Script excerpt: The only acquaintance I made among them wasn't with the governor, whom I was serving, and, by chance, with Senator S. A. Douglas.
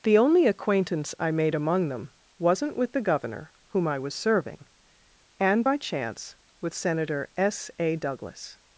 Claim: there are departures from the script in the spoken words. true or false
false